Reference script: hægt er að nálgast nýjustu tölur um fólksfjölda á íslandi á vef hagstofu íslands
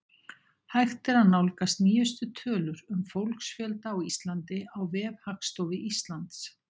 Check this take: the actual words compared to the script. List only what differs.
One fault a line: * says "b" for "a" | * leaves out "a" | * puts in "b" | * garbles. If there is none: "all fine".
all fine